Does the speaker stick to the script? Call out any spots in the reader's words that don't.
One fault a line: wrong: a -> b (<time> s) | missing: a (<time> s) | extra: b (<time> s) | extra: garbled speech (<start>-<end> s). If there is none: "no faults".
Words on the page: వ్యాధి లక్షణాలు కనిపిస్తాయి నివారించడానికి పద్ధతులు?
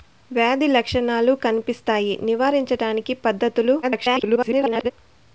extra: garbled speech (3.8-4.9 s)